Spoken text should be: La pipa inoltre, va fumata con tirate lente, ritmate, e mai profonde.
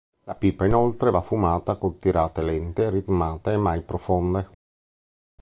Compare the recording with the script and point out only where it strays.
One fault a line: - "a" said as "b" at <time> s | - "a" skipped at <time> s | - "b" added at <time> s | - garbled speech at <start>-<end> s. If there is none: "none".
none